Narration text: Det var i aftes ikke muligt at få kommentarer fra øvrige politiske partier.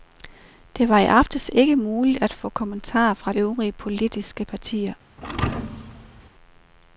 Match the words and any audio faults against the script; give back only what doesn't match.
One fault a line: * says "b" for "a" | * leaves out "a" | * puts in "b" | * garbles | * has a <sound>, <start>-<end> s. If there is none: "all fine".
* has a thud, 5.2-6.3 s